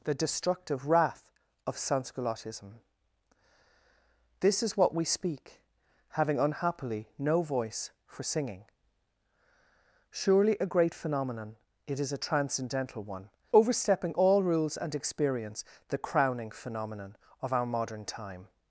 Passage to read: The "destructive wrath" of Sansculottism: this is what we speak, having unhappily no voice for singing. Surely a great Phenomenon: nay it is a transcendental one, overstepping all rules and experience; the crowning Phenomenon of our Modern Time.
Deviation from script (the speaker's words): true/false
true